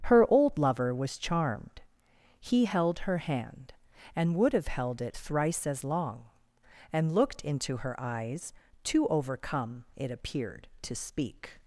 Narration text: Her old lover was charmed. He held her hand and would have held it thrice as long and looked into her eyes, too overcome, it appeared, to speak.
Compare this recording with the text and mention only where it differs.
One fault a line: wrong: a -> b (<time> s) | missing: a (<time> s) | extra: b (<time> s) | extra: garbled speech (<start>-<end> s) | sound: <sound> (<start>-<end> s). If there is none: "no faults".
no faults